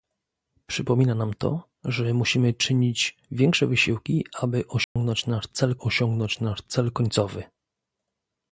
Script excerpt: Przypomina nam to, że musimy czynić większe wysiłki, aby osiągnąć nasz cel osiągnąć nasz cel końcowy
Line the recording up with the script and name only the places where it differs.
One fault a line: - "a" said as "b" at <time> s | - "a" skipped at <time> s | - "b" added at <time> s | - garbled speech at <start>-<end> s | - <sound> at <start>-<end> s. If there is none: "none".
- dropout at 4.8-5.0 s